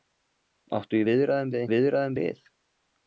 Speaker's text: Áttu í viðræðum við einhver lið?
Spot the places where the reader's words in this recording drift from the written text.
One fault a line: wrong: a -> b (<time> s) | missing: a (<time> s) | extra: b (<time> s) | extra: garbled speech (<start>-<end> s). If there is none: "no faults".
wrong: einhver -> viðræðum (1.7 s)